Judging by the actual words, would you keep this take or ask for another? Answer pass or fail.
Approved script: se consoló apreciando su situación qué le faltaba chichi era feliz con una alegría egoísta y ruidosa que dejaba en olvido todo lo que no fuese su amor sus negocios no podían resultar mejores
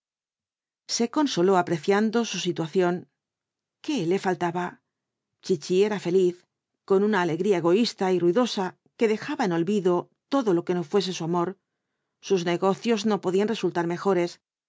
pass